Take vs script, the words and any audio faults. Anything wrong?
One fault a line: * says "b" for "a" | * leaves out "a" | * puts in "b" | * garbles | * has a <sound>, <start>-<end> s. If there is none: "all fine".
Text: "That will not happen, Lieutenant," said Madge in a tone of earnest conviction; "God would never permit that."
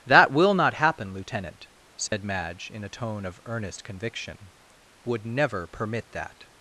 * has a dropout, 2.1-2.1 s
* leaves out "God"